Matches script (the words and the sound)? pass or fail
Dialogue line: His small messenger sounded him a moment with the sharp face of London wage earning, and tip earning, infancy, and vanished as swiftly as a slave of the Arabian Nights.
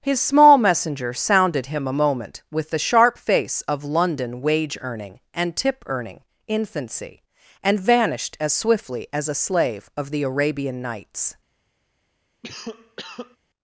fail